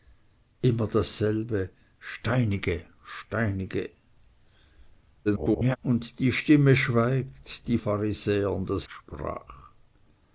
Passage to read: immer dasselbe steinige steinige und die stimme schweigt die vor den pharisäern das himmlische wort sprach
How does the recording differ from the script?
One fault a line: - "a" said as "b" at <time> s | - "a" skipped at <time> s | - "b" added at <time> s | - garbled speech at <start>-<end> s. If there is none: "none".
- garbled speech at 5.2-5.8 s
- "vor den" skipped at 7.8 s
- "himmlische wort" skipped at 8.8 s